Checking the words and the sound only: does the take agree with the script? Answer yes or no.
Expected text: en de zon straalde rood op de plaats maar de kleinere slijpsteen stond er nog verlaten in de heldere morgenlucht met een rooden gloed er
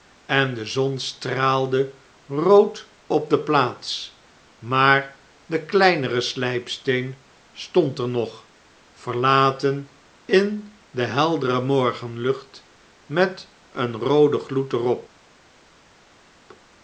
yes